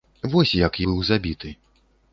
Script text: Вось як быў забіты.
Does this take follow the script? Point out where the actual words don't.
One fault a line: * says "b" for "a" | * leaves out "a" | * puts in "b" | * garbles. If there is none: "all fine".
all fine